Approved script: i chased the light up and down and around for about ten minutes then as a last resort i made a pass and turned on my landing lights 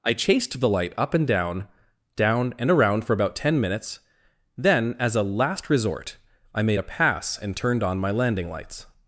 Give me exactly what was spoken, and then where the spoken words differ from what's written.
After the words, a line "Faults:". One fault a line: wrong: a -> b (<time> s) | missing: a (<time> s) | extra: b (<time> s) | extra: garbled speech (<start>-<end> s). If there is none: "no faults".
i chased the light up and down down and around for about ten minutes then as a last resort i made a pass and turned on my landing lights
Faults:
extra: down (2.1 s)